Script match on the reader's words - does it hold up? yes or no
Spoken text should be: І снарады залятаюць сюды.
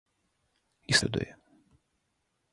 no